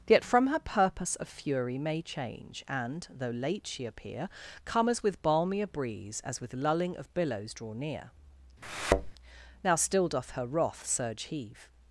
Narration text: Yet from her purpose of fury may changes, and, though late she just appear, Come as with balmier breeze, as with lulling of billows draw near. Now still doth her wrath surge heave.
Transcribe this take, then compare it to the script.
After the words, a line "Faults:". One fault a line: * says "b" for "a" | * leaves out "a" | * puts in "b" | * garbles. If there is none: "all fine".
Yet from her purpose of fury may change, and, though late she appear, Come as with balmier breeze, as with lulling of billows draw near. Now still doth her wrath surge heave.
Faults:
* says "change" for "changes"
* leaves out "just"